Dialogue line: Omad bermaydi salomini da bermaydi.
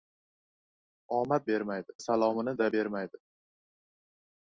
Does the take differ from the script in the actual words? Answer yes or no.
no